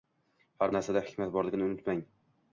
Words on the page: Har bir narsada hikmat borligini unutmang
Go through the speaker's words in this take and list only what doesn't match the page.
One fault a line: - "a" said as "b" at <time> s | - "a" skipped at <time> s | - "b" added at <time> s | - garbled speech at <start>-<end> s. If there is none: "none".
- "bir" skipped at 0.7 s